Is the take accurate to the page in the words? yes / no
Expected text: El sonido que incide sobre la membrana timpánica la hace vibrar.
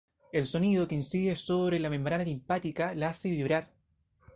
yes